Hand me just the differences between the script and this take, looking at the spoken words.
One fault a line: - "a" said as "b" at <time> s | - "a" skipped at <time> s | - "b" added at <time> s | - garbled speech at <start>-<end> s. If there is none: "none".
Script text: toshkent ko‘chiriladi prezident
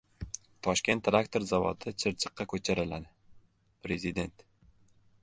- "traktor zavodi chirchiqqa" added at 1.1 s